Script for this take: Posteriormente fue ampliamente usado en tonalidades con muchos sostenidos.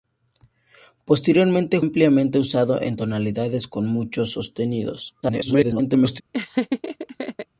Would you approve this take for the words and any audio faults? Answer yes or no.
no